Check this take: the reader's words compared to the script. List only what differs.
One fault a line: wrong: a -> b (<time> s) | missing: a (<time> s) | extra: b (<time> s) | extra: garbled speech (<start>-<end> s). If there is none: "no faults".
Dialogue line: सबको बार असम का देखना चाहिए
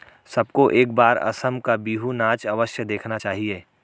extra: एक (0.7 s)
extra: बिहू नाच अवश्य (1.8 s)